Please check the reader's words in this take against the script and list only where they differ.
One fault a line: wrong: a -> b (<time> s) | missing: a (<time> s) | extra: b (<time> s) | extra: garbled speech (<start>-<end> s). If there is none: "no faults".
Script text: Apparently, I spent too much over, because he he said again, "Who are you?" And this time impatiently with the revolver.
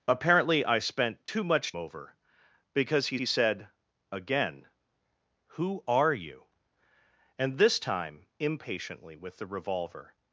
no faults